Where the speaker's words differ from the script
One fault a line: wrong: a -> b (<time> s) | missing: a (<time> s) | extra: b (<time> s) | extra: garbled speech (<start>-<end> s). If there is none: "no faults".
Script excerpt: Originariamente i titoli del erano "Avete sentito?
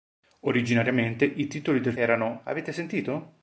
no faults